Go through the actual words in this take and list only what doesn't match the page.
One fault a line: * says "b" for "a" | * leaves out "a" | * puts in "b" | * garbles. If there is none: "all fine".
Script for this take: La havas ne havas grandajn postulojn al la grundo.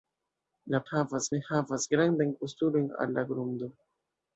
all fine